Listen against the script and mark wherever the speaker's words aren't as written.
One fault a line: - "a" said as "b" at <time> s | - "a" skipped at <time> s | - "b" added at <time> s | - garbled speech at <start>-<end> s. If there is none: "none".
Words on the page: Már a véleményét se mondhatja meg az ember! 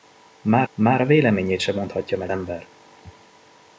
- "már" added at 0.7 s
- "az" skipped at 2.3 s